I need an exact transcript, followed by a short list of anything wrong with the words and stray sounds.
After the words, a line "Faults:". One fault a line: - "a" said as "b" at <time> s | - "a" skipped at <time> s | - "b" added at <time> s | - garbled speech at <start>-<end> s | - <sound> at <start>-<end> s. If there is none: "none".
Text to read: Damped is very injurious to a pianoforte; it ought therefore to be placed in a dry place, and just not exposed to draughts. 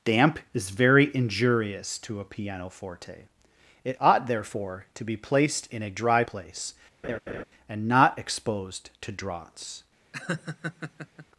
Damp is very injurious to a pianoforte; it ought therefore to be placed in a dry place, and not exposed to draughts.
Faults:
- "Damped" said as "Damp" at 0.0 s
- laugh at 7.0-7.4 s
- "just" skipped at 7.9 s
- laugh at 10.1-11.3 s